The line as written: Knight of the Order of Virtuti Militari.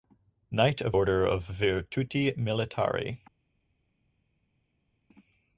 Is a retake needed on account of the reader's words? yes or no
yes